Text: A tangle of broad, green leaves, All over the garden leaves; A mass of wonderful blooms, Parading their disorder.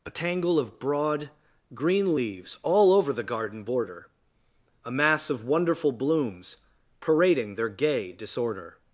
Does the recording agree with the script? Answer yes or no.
no